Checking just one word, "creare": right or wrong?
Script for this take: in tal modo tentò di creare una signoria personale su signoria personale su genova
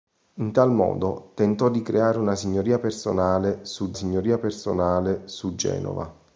right